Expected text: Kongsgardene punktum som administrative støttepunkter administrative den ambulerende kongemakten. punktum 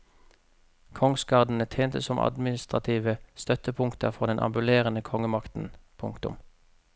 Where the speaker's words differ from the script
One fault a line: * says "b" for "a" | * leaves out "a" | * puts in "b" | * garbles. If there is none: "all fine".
* says "tjente" for "punktum"
* says "for" for "administrative"